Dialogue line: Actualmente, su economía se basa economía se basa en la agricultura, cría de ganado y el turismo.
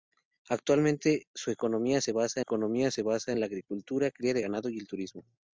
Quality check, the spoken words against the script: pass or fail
pass